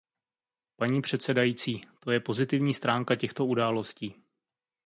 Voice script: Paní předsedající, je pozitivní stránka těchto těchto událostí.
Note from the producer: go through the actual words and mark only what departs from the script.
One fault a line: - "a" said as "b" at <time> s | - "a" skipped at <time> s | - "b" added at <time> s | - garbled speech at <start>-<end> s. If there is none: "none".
- "to" added at 2.0 s
- "těchto" skipped at 3.5 s